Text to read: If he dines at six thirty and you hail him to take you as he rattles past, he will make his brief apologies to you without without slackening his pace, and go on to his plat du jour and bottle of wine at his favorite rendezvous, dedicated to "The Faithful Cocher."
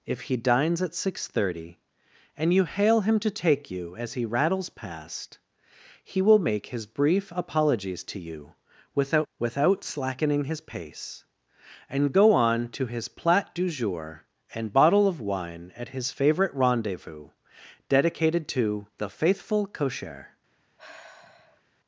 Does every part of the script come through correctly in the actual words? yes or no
yes